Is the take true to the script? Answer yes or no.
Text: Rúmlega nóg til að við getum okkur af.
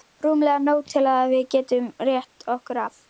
no